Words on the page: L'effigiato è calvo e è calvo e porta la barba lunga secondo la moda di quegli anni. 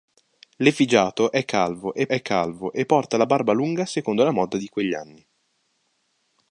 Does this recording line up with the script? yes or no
yes